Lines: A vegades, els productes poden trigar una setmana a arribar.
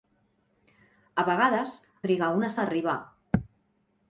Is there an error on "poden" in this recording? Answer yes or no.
yes